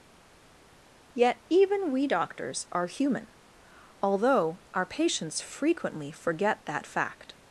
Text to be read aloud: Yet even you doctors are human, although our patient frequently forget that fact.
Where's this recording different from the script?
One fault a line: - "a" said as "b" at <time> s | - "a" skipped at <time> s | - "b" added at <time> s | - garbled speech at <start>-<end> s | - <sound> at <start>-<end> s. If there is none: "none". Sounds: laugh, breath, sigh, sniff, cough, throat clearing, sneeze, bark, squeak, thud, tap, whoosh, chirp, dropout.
- "you" said as "we" at 1.9 s
- "patient" said as "patients" at 4.8 s